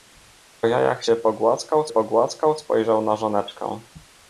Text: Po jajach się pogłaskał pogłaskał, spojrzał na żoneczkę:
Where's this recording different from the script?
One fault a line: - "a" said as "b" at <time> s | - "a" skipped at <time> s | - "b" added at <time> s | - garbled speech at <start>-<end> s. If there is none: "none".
none